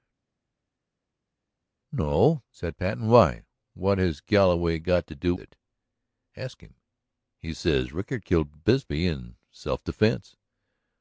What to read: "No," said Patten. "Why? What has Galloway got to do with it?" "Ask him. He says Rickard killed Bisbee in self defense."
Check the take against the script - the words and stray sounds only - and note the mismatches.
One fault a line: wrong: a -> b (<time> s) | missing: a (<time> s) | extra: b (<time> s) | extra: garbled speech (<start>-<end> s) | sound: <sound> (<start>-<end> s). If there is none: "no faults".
missing: with (5.4 s)